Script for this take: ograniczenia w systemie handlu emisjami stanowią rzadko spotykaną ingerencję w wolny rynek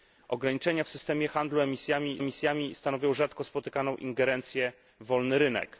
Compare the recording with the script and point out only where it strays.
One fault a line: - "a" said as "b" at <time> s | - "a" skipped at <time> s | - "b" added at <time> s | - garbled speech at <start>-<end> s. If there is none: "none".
- "emisjami" added at 2.2 s